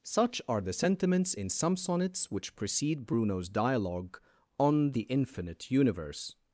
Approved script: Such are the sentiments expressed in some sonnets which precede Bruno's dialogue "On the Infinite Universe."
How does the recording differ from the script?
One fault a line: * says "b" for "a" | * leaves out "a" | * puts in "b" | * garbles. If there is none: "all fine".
* leaves out "expressed"